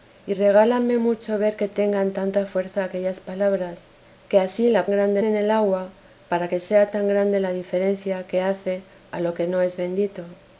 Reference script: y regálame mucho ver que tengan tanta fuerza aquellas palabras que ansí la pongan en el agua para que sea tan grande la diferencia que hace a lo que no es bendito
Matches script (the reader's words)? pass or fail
fail